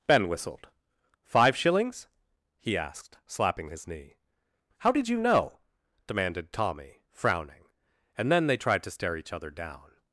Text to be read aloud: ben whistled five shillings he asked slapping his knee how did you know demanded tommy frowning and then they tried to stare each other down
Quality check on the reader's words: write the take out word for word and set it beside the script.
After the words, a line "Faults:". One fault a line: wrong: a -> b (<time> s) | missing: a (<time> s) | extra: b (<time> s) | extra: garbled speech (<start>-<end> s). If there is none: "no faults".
ben whistled five shillings he asked slapping his knee how did you know demanded tommy frowning and then they tried to stare each other down
Faults:
no faults